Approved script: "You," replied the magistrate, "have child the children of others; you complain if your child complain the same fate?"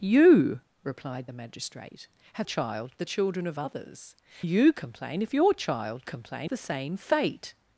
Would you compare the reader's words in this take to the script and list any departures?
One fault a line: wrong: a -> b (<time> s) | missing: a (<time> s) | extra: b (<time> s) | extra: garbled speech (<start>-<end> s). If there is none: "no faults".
no faults